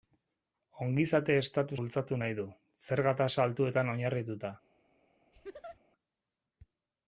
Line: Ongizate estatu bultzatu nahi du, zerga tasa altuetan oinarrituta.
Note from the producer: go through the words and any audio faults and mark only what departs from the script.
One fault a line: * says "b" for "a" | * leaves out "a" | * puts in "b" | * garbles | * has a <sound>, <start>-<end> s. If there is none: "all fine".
* has a laugh, 5.3-5.8 s